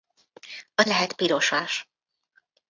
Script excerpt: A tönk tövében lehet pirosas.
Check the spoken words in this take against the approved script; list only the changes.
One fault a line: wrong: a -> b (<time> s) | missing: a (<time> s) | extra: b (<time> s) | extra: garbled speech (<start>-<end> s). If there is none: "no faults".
missing: tönk tövében (0.8 s)